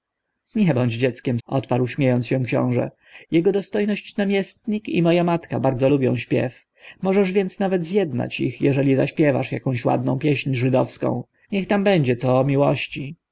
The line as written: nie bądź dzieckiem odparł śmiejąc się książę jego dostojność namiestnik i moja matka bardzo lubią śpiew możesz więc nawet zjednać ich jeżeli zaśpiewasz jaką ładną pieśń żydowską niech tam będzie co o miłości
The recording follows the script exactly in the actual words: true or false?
true